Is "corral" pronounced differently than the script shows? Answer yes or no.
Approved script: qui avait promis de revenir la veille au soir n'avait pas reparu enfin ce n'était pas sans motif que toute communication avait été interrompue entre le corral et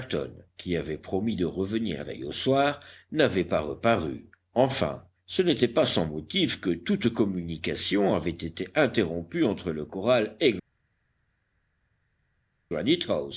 no